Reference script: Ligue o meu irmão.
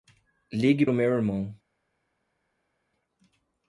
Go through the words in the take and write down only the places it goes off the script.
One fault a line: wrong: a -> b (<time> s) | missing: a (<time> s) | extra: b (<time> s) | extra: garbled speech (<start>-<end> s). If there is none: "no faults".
no faults